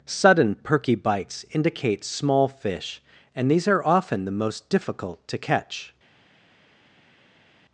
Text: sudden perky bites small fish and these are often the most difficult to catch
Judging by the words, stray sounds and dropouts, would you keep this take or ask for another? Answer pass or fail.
fail